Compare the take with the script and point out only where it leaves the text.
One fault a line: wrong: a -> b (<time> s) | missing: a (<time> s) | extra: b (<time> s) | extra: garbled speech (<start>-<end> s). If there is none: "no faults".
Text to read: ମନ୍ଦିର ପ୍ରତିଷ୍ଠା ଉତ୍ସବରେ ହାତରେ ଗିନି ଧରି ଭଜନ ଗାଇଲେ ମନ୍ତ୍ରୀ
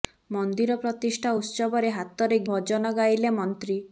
missing: ଗିନି ଧରି (2.4 s)